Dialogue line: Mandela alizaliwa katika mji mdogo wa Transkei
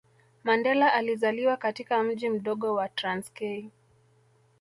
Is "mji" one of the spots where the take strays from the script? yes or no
no